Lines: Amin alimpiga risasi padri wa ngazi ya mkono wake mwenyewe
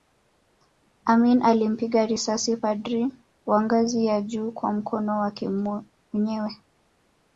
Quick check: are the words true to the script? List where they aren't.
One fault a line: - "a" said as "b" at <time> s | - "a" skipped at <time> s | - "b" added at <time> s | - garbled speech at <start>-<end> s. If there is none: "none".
- "juu kwa" added at 4.2 s